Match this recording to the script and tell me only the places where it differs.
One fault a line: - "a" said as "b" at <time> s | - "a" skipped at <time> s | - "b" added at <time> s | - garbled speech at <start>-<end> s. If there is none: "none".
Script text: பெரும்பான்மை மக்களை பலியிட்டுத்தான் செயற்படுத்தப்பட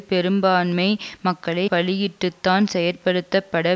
none